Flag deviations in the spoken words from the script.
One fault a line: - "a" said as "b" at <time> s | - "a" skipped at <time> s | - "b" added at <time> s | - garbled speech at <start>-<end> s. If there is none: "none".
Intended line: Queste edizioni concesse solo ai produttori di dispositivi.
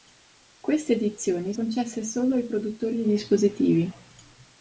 none